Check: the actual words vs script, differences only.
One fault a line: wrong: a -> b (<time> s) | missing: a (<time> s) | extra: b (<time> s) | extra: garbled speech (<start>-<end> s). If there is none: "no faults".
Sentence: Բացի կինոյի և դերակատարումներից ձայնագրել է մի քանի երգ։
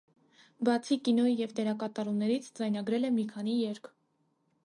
no faults